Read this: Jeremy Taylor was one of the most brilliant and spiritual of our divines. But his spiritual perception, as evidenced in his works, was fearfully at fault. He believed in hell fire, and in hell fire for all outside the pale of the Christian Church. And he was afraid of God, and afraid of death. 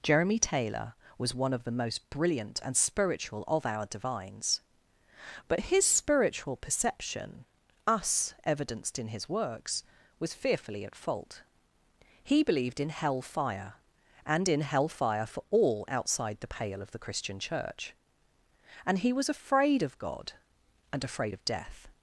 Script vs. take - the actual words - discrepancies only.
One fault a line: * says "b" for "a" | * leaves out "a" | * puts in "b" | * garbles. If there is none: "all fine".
* says "us" for "as"